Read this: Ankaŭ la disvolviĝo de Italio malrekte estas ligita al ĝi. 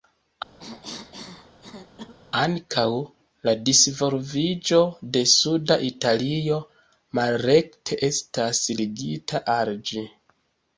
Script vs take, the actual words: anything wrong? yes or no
yes